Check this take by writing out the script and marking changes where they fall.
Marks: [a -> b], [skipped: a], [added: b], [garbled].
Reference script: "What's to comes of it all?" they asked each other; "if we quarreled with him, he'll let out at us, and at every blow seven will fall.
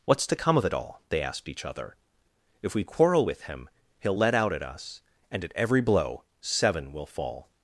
"What's to [comes -> come] of it all?" they asked each other; "if we [quarreled -> quarrel] with him, he'll let out at us, and at every blow seven will fall.